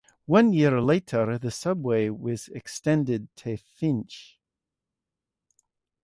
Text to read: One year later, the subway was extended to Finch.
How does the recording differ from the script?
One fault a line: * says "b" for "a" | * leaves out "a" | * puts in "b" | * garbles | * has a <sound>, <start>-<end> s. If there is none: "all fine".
all fine